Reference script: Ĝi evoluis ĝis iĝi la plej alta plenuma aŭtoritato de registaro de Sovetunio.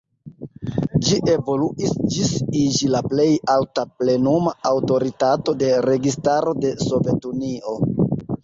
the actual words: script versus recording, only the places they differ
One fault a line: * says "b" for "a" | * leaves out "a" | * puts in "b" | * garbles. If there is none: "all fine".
all fine